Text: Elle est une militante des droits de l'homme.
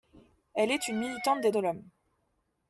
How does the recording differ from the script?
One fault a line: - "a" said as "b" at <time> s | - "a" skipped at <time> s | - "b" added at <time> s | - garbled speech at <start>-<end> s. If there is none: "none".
- "droits" skipped at 1.5 s